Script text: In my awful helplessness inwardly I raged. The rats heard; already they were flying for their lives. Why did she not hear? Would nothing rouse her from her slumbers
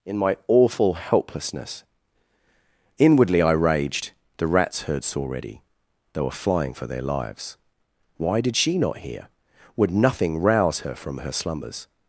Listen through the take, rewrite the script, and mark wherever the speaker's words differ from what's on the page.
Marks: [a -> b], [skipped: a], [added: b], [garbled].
In my awful helplessness inwardly I raged. The rats heard; already they were flying for their lives. Why did she not hear? Would nothing rouse her from her slumbers